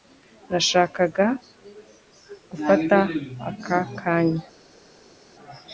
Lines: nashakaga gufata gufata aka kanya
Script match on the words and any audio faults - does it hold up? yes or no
no